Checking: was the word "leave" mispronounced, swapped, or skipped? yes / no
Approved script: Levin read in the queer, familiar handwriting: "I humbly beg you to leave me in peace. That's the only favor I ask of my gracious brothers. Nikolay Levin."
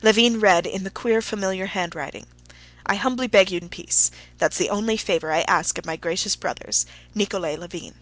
yes